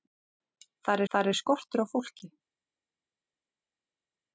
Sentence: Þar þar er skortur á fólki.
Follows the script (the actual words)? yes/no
yes